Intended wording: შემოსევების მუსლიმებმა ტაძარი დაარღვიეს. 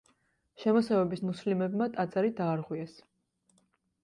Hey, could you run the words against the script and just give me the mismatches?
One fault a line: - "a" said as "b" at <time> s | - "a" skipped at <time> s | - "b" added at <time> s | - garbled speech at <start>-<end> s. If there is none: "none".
none